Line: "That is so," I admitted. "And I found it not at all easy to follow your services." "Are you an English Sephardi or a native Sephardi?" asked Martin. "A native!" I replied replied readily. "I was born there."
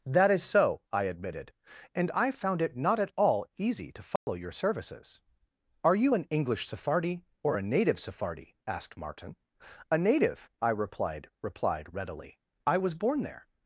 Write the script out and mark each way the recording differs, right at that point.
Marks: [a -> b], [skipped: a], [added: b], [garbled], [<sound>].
"That is so," I admitted. "And I found it not at all easy to follow [dropout] your services." "Are you an English Sephardi or a native Sephardi?" asked Martin. "A native!" I replied replied readily. "I was born there."